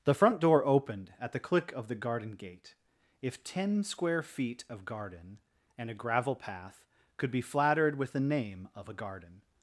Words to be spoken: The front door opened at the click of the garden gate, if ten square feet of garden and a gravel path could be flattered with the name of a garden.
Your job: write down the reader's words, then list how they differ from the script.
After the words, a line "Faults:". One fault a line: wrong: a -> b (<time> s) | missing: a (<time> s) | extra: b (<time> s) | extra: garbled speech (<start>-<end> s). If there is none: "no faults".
The front door opened at the click of the garden gate, if ten square feet of garden and a gravel path could be flattered with the name of a garden.
Faults:
no faults